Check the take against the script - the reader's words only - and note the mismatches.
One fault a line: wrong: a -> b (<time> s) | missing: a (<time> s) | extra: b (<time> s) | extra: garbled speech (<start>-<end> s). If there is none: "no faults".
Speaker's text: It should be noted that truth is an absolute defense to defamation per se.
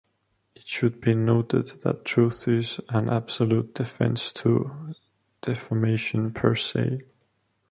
no faults